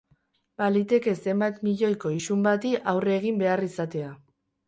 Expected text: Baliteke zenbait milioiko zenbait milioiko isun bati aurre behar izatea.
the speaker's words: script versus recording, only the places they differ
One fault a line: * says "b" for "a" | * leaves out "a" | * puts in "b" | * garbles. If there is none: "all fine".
* leaves out "zenbait milioiko"
* puts in "egin"